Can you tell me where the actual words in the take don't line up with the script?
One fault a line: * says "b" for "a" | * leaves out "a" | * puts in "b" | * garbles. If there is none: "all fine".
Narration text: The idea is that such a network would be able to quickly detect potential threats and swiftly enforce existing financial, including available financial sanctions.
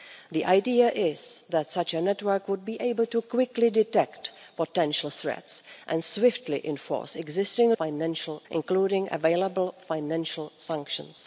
all fine